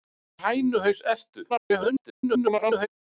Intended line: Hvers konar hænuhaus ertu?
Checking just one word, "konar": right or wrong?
wrong